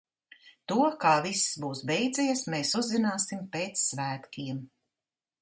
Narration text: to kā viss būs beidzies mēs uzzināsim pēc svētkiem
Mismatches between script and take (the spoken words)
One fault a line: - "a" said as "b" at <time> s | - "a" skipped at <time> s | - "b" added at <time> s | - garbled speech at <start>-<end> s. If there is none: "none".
none